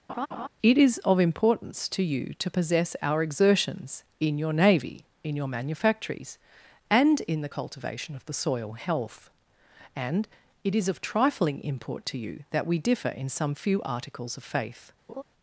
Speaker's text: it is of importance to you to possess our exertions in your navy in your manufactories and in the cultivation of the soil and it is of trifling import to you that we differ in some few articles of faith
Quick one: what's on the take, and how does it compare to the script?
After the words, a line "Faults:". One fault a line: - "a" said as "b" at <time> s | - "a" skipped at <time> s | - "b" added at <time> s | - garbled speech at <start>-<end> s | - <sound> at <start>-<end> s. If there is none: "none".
it is of importance to you to possess our exertions in your navy in your manufactories and in the cultivation of the soil health and it is of trifling import to you that we differ in some few articles of faith
Faults:
- laugh at 0.1-0.5 s
- "health" added at 8.7 s
- laugh at 15.1-15.2 s